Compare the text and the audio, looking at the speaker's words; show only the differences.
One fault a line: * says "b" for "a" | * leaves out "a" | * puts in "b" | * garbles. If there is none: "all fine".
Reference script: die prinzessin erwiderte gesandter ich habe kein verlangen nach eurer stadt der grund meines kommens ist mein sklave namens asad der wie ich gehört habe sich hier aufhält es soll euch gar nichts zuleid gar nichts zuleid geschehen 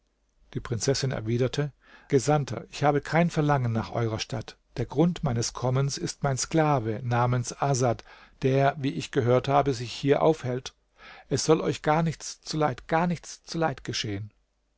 all fine